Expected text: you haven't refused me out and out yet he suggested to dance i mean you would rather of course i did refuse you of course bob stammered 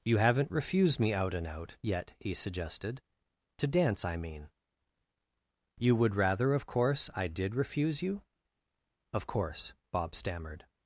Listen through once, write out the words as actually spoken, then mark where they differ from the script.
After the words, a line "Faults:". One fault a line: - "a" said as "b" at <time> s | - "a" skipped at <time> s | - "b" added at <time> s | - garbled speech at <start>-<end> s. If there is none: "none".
you haven't refused me out and out yet he suggested to dance i mean you would rather of course i did refuse you of course bob stammered
Faults:
none